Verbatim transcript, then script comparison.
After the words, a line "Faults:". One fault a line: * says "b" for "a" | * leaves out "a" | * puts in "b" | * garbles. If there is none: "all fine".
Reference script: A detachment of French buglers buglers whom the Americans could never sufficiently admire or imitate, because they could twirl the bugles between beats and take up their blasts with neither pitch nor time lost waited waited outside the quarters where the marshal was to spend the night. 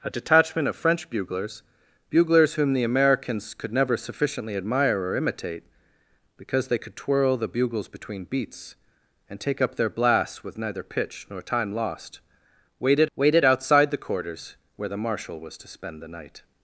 A detachment of French buglers buglers whom the Americans could never sufficiently admire or imitate, because they could twirl the bugles between beats and take up their blasts with neither pitch nor time lost waited waited outside the quarters where the marshal was to spend the night.
Faults:
all fine